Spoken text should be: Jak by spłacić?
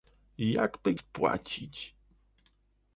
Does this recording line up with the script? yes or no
yes